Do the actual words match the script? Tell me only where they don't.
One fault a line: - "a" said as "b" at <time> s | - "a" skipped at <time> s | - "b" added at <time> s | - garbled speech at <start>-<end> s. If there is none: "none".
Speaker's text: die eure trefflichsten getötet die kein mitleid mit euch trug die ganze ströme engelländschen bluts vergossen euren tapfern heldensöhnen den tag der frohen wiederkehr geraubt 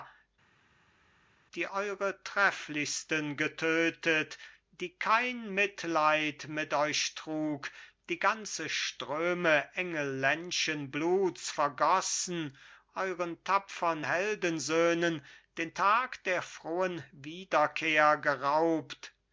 none